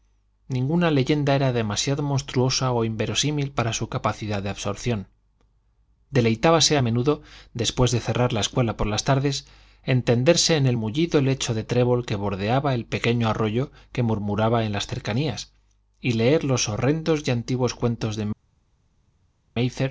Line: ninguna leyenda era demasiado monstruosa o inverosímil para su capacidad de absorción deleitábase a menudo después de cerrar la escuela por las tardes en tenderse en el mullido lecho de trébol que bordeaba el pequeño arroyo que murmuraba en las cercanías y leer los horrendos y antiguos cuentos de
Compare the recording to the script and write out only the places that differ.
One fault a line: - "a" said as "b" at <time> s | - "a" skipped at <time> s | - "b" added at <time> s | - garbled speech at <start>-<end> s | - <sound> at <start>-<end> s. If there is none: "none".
none